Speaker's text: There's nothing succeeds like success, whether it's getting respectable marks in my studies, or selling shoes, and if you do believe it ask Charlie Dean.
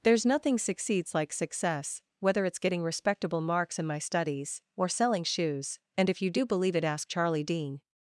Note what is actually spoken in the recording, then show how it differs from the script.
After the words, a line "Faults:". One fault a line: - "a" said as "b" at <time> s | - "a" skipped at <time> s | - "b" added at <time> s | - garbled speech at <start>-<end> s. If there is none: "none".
There's nothing succeeds like success, whether it's getting respectable marks in my studies, or selling shoes, and if you do believe it ask Charlie Dean.
Faults:
none